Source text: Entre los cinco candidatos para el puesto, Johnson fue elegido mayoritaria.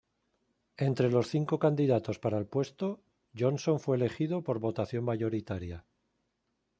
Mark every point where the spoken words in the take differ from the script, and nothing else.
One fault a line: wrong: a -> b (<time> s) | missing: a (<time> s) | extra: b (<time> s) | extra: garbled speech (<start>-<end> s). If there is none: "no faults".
extra: por votación (4.4 s)